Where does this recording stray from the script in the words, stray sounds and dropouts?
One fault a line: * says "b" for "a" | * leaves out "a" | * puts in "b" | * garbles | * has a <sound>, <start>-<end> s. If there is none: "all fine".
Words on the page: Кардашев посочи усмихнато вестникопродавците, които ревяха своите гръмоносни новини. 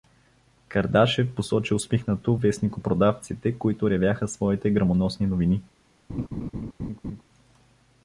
* has a laugh, 6.1-7.2 s